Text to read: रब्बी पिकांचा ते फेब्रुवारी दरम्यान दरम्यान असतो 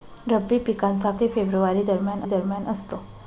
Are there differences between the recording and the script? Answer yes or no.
no